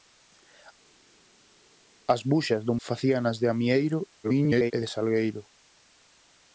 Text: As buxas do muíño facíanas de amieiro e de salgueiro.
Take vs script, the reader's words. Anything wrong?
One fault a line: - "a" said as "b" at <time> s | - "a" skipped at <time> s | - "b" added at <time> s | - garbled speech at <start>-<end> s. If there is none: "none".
- "muíño" skipped at 2.7 s
- garbled speech at 4.2-4.7 s